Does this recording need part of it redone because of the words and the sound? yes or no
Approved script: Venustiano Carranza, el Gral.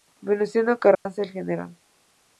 yes